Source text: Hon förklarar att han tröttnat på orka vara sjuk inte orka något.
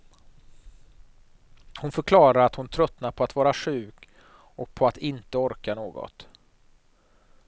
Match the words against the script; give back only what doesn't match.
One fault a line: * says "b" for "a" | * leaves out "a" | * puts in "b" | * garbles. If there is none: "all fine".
* says "hon" for "han"
* says "att" for "orka"
* puts in "och på att"